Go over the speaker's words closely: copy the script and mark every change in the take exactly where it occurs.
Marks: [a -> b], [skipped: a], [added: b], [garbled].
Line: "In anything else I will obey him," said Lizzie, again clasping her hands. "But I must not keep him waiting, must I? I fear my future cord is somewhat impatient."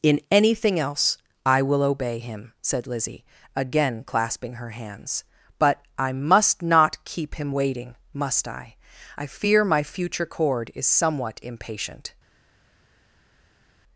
"In anything else I will obey him," said Lizzie, again clasping her hands. "But I must not keep him waiting, must I? I fear my future cord is somewhat impatient."